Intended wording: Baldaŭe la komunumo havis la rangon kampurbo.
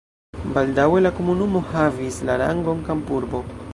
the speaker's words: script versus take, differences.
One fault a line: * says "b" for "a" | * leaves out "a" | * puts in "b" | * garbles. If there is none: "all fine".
all fine